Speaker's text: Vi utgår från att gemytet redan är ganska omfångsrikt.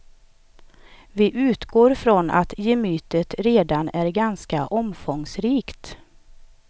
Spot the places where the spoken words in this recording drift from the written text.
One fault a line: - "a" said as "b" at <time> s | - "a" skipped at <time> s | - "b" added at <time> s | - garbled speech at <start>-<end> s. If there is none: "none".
none